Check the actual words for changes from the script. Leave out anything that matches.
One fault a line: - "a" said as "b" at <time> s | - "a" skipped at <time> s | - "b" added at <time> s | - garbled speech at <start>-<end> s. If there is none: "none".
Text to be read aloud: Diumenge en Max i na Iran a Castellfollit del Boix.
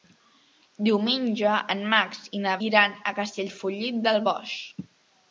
none